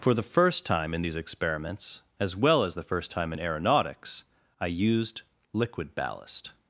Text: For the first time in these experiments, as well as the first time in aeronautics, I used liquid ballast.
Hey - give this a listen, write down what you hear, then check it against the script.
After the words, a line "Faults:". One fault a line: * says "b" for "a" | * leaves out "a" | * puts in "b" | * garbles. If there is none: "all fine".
For the first time in these experiments, as well as the first time in aeronautics, I used liquid ballast.
Faults:
all fine